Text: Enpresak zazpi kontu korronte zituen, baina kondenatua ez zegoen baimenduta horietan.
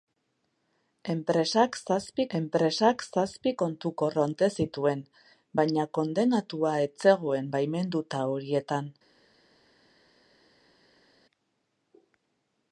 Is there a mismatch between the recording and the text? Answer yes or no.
yes